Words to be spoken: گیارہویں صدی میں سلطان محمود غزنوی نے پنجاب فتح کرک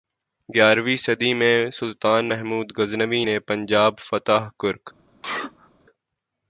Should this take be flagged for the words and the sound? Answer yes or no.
yes